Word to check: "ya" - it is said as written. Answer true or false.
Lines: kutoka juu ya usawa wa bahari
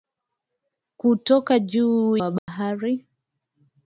false